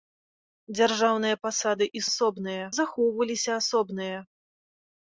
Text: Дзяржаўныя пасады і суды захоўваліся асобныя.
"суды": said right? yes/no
no